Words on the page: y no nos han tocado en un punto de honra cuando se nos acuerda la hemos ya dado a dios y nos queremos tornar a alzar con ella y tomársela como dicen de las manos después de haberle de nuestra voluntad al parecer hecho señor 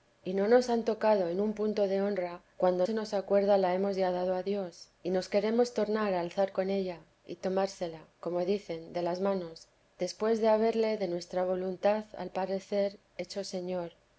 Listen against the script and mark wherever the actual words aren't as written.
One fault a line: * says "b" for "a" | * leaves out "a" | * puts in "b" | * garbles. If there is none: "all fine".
all fine